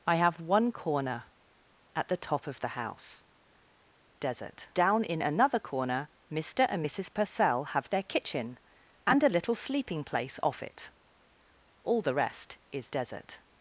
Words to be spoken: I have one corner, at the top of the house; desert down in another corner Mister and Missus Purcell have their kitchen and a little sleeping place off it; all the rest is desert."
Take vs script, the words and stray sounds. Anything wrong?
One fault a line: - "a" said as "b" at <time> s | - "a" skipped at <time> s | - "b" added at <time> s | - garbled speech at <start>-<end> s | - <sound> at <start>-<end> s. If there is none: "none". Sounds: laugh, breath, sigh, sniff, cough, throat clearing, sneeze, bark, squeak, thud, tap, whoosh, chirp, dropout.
none